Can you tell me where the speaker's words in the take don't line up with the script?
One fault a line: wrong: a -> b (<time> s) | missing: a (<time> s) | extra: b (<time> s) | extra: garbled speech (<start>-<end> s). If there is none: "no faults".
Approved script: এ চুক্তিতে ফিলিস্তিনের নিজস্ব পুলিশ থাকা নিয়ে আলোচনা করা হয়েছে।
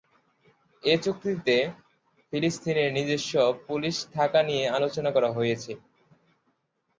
no faults